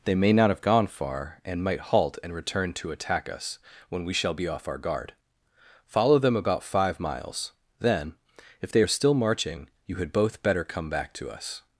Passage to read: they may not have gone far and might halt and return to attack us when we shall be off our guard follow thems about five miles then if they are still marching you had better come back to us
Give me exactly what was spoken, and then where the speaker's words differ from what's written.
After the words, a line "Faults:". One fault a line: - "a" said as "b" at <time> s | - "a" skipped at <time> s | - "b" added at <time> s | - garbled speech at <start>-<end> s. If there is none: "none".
they may not have gone far and might halt and return to attack us when we shall be off our guard follow them about five miles then if they are still marching you had both better come back to us
Faults:
- "thems" said as "them" at 6.2 s
- "both" added at 10.1 s